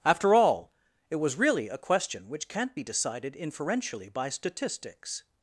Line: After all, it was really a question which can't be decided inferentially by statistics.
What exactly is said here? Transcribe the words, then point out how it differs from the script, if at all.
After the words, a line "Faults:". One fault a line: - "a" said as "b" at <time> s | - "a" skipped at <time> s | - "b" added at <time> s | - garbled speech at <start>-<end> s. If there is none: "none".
After all, it was really a question which can't be decided inferentially by statistics.
Faults:
none